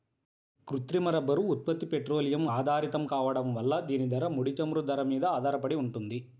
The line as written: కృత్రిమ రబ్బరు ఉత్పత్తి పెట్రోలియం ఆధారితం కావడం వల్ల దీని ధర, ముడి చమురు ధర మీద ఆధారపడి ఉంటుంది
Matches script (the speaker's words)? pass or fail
pass